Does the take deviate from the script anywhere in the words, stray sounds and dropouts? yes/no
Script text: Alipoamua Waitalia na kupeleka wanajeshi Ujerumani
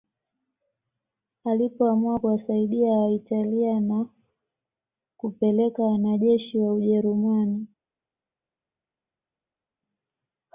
yes